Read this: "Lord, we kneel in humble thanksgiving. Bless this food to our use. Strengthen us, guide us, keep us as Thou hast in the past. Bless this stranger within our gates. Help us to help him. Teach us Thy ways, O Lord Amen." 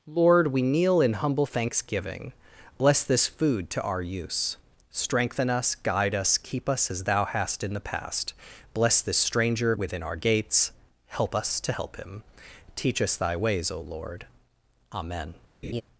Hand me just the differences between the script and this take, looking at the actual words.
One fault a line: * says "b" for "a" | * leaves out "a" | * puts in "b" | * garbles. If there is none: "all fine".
all fine